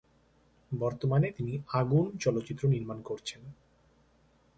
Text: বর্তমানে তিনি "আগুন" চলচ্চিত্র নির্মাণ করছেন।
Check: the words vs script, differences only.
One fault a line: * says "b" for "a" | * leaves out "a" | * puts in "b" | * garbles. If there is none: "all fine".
all fine